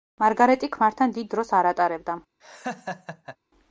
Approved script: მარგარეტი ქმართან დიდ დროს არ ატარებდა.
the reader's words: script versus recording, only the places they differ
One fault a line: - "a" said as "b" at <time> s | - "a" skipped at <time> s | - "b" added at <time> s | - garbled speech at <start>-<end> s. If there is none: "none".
none